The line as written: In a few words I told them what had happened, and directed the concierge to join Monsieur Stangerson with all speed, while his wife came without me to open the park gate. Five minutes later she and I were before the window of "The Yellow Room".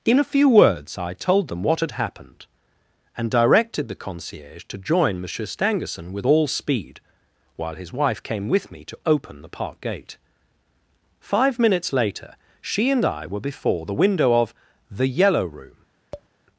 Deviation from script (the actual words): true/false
true